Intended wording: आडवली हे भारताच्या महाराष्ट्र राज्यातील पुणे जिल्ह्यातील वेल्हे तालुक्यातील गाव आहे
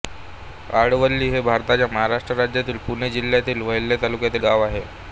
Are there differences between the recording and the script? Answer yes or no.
no